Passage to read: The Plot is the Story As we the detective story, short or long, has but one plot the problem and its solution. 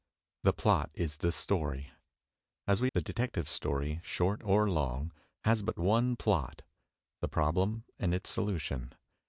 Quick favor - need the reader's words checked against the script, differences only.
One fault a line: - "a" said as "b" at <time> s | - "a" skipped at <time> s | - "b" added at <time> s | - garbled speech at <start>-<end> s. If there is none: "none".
none